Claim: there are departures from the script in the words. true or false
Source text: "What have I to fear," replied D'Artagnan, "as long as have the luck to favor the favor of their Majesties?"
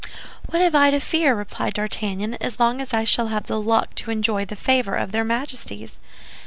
true